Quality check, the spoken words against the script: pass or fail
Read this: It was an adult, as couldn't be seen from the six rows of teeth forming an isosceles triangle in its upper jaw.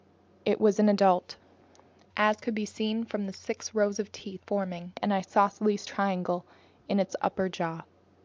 fail